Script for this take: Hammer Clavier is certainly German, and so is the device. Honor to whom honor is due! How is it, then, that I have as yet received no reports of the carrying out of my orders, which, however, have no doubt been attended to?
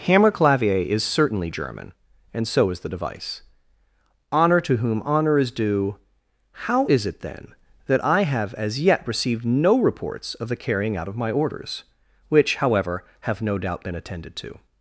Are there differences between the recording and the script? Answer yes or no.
no